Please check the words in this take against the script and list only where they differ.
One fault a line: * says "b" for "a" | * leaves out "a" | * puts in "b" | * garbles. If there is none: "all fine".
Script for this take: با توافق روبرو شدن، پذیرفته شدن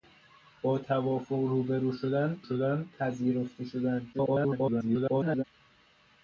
* puts in "شدن"
* garbles